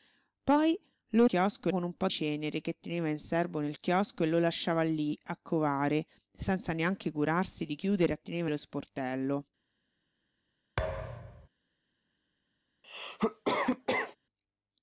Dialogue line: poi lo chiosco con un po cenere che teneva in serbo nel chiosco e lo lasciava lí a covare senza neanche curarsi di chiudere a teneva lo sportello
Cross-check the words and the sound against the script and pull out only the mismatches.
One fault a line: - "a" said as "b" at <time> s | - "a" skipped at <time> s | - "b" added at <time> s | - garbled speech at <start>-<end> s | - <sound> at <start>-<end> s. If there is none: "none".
- thud at 10.8-11.5 s
- cough at 12.8-14.2 s